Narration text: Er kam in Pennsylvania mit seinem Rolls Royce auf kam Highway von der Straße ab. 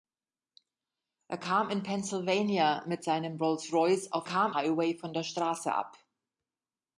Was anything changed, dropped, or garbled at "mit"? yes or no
no